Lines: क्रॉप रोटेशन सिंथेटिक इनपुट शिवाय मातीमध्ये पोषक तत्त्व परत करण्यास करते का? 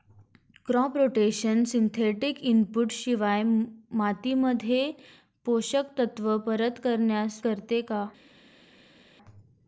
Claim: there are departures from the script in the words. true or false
false